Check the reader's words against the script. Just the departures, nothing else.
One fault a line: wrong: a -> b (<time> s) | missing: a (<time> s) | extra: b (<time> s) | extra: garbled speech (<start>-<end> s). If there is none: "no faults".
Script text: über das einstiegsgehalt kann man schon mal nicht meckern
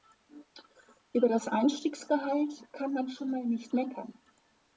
no faults